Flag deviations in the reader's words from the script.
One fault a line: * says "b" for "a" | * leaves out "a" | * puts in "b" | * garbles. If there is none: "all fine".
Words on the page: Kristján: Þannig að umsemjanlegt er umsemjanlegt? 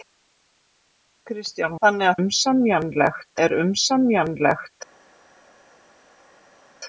all fine